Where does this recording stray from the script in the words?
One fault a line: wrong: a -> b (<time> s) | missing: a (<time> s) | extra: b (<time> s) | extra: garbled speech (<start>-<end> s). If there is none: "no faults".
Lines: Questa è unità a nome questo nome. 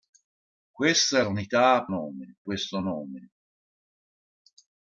no faults